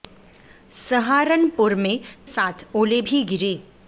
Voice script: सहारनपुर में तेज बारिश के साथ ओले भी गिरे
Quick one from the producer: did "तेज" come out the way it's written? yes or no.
no